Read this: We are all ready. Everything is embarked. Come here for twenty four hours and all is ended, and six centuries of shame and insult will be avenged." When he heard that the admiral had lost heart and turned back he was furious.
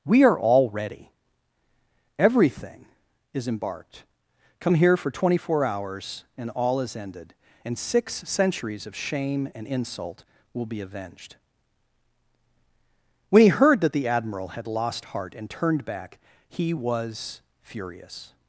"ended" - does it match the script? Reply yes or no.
yes